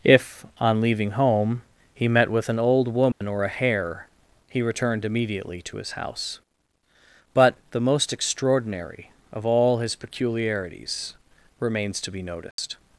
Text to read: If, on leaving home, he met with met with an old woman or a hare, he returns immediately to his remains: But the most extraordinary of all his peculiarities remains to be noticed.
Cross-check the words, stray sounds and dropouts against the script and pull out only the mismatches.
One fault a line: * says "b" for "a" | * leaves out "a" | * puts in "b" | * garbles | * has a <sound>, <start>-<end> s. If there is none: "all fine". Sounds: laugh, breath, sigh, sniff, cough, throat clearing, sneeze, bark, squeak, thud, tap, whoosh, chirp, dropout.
* leaves out "met with"
* has a dropout, 3.1-3.2 s
* says "returned" for "returns"
* says "house" for "remains"
* has a dropout, 12.5-12.6 s